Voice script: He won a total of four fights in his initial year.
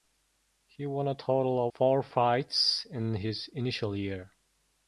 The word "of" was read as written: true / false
false